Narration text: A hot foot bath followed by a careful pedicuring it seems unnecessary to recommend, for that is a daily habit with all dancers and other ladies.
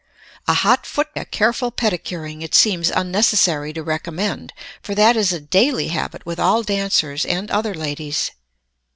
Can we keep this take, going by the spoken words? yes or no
no